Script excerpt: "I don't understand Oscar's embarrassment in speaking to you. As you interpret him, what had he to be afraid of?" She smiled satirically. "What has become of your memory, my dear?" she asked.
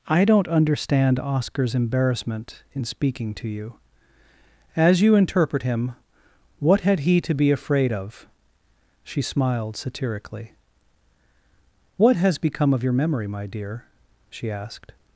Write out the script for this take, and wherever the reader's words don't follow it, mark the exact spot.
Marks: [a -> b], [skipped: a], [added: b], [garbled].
"I don't understand Oscar's embarrassment in speaking to you. As you interpret him, what had he to be afraid of?" She smiled satirically. "What has become of your memory, my dear?" she asked.